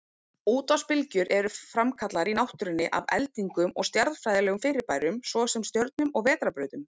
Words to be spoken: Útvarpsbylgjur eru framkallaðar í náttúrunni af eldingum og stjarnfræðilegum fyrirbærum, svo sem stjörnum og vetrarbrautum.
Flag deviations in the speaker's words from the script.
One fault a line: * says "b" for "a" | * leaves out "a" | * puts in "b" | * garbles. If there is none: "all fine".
all fine